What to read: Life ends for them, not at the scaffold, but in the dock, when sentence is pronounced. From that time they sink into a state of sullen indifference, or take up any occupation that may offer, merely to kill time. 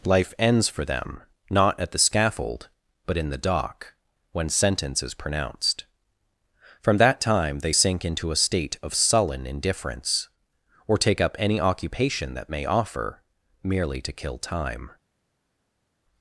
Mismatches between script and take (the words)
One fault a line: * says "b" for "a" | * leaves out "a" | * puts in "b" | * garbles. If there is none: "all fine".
all fine